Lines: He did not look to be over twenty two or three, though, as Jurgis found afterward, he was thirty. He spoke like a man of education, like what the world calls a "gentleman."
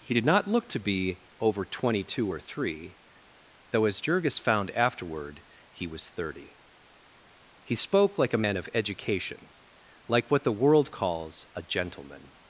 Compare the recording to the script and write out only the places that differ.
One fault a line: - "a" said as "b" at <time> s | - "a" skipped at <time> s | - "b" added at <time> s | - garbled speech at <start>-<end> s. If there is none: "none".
none